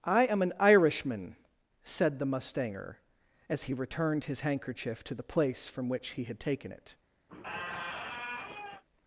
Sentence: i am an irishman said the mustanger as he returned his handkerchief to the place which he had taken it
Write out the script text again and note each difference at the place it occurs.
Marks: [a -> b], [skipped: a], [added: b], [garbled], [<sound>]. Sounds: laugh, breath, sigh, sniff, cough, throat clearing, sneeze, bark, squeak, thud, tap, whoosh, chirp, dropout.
i am an irishman said the mustanger as he returned his handkerchief to the place [added: from] which he had taken it [squeak]